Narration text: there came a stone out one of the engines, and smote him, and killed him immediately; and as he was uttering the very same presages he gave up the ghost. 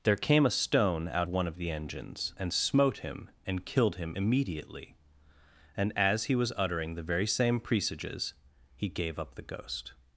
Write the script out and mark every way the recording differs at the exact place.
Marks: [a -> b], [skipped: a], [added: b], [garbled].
there came a stone out one of the engines, and smote him, and killed him immediately; and as he was uttering the very same presages he gave up the ghost.